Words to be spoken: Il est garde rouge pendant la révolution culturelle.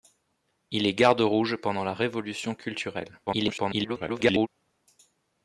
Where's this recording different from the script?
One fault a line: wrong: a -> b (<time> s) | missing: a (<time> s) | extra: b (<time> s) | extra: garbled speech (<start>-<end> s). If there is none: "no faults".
extra: garbled speech (3.3-4.5 s)